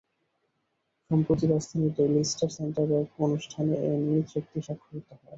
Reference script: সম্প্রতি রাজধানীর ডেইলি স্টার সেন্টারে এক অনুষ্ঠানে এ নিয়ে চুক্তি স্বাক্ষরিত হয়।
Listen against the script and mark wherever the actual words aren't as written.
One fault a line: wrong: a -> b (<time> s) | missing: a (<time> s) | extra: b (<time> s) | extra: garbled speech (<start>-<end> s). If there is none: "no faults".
no faults